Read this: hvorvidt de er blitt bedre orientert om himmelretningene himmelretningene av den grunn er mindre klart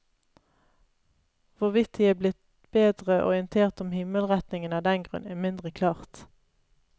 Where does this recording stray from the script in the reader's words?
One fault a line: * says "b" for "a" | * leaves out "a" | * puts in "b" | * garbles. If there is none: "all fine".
* leaves out "himmelretningene"